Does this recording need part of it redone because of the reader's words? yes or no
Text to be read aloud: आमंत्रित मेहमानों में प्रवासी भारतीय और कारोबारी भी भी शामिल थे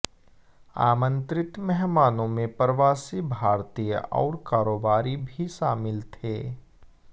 yes